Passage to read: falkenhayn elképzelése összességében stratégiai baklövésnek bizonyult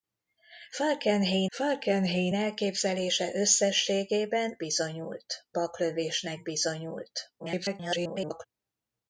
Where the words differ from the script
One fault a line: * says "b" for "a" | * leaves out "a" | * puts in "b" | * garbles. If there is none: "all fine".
* puts in "falkenhayn"
* says "bizonyult" for "stratégiai"
* garbles